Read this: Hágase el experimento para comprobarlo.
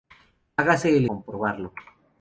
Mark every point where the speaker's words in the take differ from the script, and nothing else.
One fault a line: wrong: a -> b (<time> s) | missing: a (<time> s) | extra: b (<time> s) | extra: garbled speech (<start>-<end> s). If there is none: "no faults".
missing: experimento para (1.1 s)